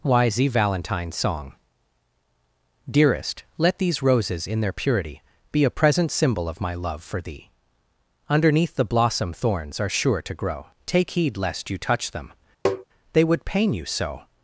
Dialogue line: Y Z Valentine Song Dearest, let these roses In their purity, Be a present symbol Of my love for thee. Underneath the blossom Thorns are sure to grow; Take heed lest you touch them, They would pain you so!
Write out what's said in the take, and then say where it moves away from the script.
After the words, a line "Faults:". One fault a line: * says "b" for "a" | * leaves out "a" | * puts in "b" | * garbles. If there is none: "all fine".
Y Z Valentine Song Dearest, let these roses In their purity, Be a present symbol Of my love for thee. Underneath the blossom Thorns are sure to grow; Take heed lest you touch them, They would pain you so!
Faults:
all fine